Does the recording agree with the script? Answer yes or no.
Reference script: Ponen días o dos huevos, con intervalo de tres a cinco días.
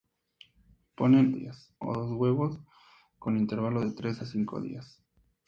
yes